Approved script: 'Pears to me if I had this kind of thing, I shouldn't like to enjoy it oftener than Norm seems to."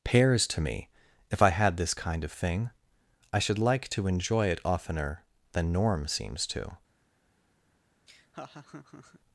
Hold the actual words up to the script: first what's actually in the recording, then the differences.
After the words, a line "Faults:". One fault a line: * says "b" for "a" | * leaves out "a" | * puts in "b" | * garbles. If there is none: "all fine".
'Pears to me if I had this kind of thing, I should like to enjoy it oftener than Norm seems to."
Faults:
* says "should" for "shouldn't"